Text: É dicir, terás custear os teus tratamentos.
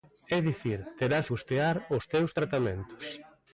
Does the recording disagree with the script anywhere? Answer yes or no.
no